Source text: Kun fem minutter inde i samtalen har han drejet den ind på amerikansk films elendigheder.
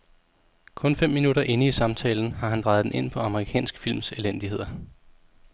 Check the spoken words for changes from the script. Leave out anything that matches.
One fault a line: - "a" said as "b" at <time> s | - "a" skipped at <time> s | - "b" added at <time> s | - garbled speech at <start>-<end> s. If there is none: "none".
none